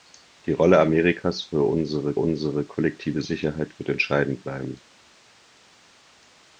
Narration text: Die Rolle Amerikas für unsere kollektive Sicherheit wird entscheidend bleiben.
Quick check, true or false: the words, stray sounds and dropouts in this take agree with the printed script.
false